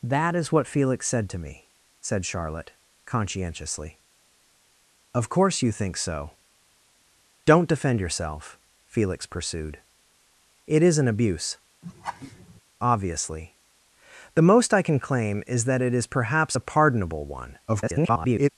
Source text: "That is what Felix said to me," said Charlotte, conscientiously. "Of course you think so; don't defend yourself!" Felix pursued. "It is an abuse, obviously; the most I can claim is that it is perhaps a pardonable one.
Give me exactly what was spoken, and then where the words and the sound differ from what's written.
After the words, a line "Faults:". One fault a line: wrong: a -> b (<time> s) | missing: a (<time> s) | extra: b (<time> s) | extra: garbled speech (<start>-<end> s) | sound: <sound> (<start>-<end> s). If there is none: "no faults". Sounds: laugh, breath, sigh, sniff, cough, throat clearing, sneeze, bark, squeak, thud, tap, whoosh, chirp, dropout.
"That is what Felix said to me," said Charlotte, conscientiously. "Of course you think so; don't defend yourself!" Felix pursued. "It is an abuse, obviously; the most I can claim is that it is perhaps a pardonable one. [garbled]
Faults:
sound: laugh (11.8-12.6 s)
extra: garbled speech (17.7-18.5 s)